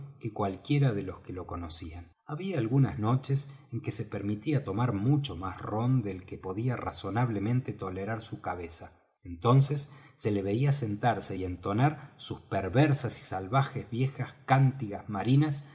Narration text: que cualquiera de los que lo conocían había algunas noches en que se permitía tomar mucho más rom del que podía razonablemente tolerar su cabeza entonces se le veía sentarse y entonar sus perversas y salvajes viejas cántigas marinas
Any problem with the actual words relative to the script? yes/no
no